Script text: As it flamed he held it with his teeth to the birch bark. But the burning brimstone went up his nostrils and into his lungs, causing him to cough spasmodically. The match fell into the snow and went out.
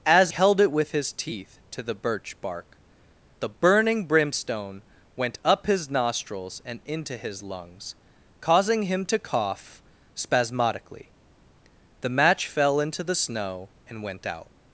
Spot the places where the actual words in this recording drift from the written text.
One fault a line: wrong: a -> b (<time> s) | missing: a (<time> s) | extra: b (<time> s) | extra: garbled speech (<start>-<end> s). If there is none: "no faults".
missing: it flamed he (0.3 s)
missing: But (2.8 s)